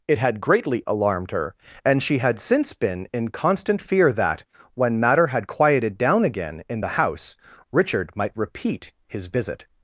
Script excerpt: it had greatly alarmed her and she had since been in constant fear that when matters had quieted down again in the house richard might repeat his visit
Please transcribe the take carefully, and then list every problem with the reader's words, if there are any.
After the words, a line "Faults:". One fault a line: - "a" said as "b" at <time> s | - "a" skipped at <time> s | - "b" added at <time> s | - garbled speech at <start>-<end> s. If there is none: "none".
it had greatly alarmed her and she had since been in constant fear that when matter had quieted down again in the house richard might repeat his visit
Faults:
- "matters" said as "matter" at 5.0 s